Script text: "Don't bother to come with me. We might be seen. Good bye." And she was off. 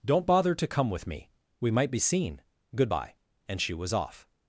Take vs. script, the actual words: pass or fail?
pass